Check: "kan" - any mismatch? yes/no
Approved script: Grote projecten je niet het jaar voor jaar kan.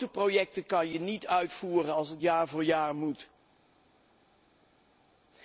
yes